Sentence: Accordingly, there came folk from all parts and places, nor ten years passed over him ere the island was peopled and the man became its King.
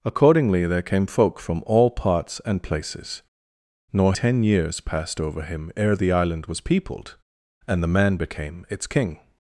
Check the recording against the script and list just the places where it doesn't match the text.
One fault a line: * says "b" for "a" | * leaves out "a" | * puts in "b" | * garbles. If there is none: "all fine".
all fine